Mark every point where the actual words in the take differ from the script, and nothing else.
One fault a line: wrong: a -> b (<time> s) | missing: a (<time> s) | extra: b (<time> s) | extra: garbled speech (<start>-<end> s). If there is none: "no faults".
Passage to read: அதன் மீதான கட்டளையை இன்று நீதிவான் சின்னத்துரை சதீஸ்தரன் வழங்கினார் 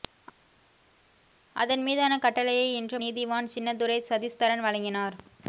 no faults